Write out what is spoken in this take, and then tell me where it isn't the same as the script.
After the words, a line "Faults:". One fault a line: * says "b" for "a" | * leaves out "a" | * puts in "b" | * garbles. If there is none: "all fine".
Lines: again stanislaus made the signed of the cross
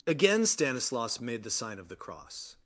again stanislaus made the sign of the cross
Faults:
* says "sign" for "signed"